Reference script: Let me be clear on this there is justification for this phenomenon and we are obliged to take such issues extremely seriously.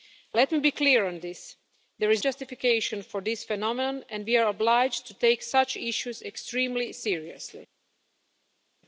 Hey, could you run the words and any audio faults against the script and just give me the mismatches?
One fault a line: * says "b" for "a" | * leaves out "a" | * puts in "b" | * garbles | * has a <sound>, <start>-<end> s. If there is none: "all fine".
all fine